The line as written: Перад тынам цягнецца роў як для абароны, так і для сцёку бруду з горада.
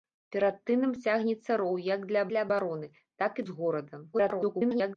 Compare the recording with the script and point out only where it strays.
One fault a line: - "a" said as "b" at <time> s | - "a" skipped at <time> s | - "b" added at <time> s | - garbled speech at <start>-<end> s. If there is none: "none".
- "для" added at 2.3 s
- "для сцёку бруду" skipped at 3.5 s
- garbled speech at 4.1-5.0 s